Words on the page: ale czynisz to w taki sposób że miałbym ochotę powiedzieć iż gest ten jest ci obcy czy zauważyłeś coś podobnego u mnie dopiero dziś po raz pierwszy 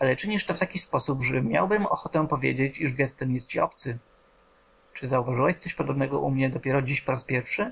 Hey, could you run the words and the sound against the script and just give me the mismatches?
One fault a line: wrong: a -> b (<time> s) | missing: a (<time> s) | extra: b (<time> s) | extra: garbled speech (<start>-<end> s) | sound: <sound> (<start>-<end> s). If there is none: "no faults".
no faults